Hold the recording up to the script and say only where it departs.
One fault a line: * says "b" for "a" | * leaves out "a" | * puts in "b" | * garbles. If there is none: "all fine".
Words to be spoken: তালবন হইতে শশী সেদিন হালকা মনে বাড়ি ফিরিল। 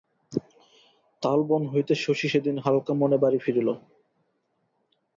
all fine